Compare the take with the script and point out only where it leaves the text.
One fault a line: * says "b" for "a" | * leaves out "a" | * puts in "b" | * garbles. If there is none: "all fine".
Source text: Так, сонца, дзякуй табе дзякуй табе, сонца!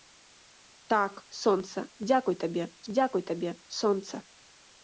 all fine